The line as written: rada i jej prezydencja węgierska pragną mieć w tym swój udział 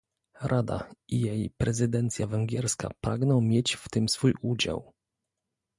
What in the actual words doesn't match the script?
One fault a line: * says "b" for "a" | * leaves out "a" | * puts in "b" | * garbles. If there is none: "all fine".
all fine